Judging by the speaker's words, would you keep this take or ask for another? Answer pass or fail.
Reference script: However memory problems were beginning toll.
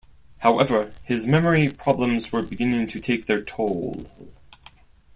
fail